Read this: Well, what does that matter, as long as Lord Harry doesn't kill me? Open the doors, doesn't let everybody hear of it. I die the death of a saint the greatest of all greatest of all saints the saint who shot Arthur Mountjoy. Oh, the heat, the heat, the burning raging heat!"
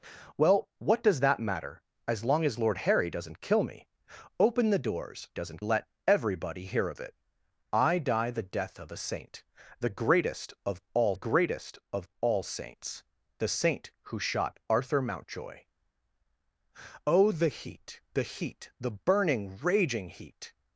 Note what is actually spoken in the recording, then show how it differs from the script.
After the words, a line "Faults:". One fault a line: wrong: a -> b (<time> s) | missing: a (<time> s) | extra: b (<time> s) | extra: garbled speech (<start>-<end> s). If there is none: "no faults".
Well, what does that matter, as long as Lord Harry doesn't kill me? Open the doors, doesn't let everybody hear of it. I die the death of a saint the greatest of all greatest of all saints the saint who shot Arthur Mountjoy. Oh, the heat, the heat, the burning raging heat!"
Faults:
no faults